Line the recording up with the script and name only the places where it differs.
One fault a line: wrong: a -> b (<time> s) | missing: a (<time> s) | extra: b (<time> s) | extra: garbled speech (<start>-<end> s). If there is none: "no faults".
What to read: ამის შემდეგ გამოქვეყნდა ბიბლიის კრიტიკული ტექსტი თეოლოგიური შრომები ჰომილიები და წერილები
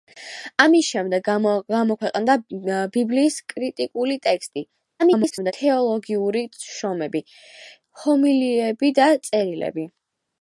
extra: garbled speech (5.0-5.5 s)